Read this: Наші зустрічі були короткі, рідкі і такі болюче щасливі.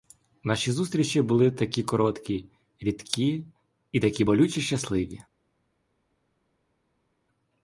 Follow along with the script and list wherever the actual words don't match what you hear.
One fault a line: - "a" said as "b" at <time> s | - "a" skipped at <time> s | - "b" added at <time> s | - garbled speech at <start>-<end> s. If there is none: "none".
- "такі" added at 1.5 s